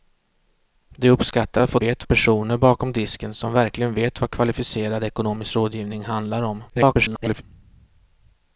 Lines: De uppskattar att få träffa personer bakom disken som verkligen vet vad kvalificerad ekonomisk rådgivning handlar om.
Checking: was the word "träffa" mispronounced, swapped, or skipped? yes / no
yes